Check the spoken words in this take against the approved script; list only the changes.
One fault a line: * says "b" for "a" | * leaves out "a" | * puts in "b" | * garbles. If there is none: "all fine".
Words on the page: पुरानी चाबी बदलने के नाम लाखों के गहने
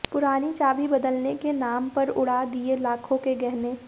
* puts in "पर उड़ा दिए"